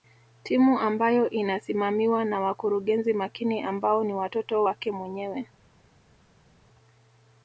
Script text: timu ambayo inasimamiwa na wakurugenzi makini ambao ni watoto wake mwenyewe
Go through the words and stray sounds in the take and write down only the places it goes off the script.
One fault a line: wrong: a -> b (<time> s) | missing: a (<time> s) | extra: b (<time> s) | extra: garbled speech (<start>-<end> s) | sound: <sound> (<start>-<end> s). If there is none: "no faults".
no faults